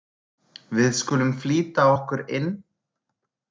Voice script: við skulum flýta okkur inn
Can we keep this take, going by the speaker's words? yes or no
yes